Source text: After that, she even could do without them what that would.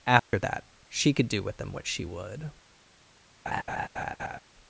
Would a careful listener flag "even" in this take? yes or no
yes